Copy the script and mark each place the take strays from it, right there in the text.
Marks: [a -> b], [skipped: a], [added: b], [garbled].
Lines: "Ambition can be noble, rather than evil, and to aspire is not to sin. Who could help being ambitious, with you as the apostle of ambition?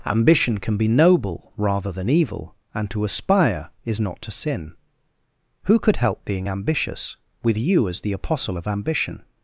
"Ambition can be noble, rather than evil, and to aspire is not to sin. Who could help being ambitious, with you as the apostle of ambition?